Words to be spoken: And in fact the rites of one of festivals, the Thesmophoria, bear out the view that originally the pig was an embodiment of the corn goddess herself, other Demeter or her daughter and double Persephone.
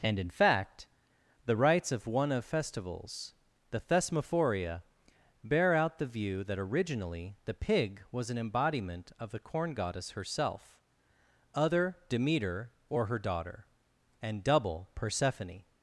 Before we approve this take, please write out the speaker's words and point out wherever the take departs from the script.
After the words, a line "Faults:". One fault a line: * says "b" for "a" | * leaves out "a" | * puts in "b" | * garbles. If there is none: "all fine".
And in fact the rites of one of festivals, the Thesmophoria, bear out the view that originally the pig was an embodiment of the corn goddess herself, other Demeter or her daughter and double Persephone.
Faults:
all fine